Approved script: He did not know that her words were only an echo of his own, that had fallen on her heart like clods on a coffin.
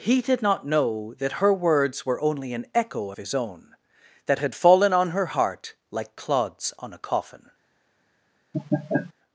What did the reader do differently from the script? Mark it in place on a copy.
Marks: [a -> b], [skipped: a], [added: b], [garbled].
He did not know that her words were only an echo [skipped: of] his own, that had fallen on her heart like clods on a coffin.